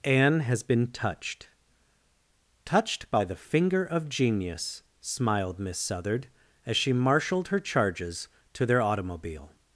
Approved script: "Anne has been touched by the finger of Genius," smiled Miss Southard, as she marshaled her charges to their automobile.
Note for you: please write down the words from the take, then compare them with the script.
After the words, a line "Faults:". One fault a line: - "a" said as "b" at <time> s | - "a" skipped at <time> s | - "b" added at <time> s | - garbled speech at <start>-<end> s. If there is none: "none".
"Anne has been touched touched by the finger of Genius," smiled Miss Southard, as she marshaled her charges to their automobile.
Faults:
- "touched" added at 2.6 s